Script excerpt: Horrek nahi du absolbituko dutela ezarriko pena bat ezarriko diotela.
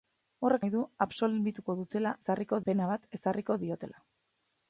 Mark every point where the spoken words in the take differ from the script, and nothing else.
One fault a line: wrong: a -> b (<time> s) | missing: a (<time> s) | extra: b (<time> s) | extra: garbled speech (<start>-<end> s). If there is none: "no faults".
no faults